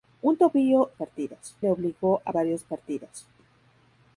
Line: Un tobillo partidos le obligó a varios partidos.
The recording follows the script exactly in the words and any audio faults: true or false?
true